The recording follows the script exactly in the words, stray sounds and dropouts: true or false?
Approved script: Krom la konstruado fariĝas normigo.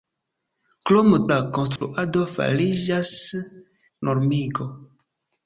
false